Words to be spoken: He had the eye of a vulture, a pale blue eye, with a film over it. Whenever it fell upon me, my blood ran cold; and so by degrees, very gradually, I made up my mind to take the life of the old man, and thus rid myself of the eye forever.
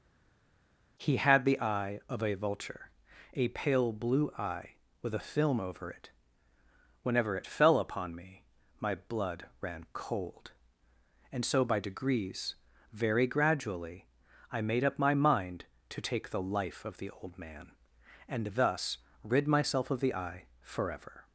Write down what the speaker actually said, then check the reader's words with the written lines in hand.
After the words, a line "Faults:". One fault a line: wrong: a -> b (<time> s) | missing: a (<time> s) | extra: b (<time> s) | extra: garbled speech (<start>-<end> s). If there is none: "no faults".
He had the eye of a vulture, a pale blue eye, with a film over it. Whenever it fell upon me, my blood ran cold; and so by degrees, very gradually, I made up my mind to take the life of the old man, and thus rid myself of the eye forever.
Faults:
no faults